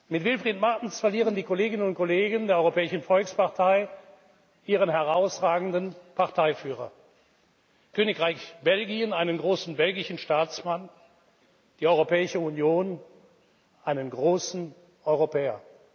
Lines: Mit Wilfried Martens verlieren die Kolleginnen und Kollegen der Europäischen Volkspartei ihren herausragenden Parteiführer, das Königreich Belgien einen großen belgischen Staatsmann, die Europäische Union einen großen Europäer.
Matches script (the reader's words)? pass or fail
fail